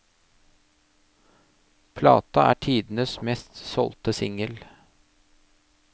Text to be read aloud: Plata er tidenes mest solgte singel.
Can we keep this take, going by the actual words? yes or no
yes